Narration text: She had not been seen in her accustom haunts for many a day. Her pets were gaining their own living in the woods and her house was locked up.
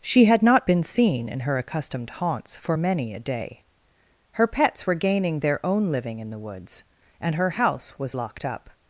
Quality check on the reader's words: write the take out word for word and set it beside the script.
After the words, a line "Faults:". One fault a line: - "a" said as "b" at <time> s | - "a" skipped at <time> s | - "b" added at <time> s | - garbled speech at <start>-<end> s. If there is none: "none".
She had not been seen in her accustomed haunts for many a day. Her pets were gaining their own living in the woods and her house was locked up.
Faults:
- "accustom" said as "accustomed" at 1.6 s